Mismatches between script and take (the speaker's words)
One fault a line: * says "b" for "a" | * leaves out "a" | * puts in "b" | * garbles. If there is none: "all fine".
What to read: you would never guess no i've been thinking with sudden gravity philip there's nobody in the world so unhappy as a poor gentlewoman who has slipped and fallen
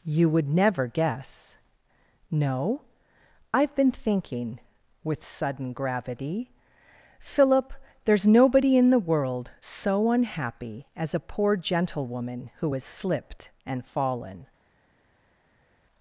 all fine